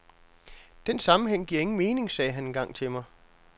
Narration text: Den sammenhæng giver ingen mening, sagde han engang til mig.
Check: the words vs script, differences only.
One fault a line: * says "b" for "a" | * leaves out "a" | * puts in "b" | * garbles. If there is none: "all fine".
all fine